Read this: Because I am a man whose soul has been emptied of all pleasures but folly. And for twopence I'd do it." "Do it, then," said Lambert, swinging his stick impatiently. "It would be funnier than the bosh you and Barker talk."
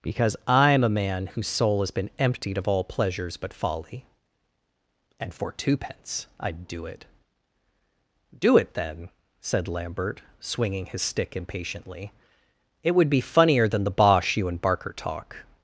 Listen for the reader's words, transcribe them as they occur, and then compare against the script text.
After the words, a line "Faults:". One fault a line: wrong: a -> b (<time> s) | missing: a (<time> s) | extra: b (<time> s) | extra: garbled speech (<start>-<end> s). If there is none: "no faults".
Because I am a man whose soul has been emptied of all pleasures but folly. And for twopence I'd do it." "Do it, then," said Lambert, swinging his stick impatiently. "It would be funnier than the bosh you and Barker talk."
Faults:
no faults